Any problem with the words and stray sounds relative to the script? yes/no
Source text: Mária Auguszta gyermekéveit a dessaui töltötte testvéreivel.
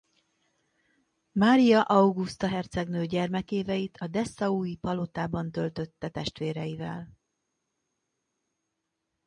yes